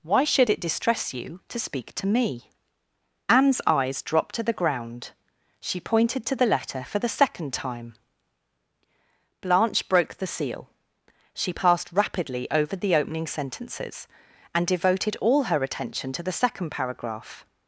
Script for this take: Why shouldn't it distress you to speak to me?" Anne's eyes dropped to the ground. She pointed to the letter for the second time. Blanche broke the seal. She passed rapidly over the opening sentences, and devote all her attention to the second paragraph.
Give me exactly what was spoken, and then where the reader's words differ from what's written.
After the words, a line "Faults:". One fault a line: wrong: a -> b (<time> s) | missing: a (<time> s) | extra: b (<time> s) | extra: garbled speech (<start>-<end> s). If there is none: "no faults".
Why should it distress you to speak to me?" Anne's eyes dropped to the ground. She pointed to the letter for the second time. Blanche broke the seal. She passed rapidly over the opening sentences, and devoted all her attention to the second paragraph.
Faults:
wrong: shouldn't -> should (0.2 s)
wrong: devote -> devoted (14.6 s)